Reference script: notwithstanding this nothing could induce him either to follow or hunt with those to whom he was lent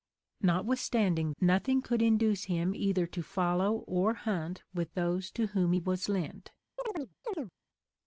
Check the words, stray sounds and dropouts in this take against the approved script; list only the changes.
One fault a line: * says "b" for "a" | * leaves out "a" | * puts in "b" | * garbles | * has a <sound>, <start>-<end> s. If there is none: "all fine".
* leaves out "this"
* has a chirp, 6.8-7.5 s